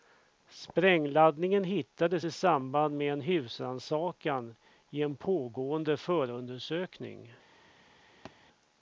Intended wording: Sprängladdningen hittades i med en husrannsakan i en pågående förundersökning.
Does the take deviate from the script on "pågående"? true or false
false